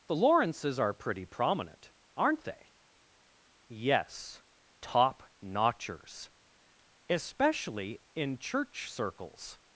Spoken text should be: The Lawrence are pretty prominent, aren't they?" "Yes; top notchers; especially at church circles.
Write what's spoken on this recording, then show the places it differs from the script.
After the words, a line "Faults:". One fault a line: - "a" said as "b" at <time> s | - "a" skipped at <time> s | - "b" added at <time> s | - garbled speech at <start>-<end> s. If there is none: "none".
The Lawrences are pretty prominent, aren't they?" "Yes; top notchers; especially in church circles.
Faults:
- "Lawrence" said as "Lawrences" at 0.1 s
- "at" said as "in" at 8.1 s